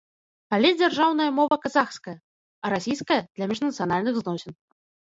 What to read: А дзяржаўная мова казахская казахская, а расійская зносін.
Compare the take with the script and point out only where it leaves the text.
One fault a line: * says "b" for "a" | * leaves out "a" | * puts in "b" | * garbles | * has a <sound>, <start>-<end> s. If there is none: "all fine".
* says "Але" for "А"
* has a dropout, 1.5-1.5 s
* leaves out "казахская"
* puts in "для міжнацыянальных"